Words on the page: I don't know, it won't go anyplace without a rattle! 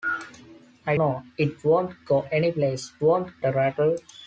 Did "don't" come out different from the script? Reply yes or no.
yes